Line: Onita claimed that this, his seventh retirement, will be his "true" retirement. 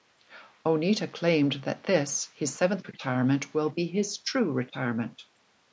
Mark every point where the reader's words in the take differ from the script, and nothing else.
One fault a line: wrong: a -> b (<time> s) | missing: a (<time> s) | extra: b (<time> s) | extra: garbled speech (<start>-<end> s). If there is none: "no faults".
no faults